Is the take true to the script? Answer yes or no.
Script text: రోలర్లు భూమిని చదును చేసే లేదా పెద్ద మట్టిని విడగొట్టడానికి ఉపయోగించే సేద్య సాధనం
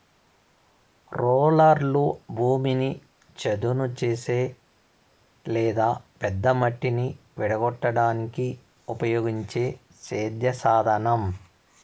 yes